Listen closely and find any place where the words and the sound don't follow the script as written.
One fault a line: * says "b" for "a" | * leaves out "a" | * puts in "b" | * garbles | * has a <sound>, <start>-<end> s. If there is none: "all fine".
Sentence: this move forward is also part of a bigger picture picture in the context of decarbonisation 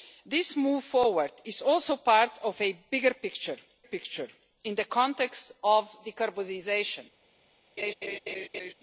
* has a laugh, 7.8-8.7 s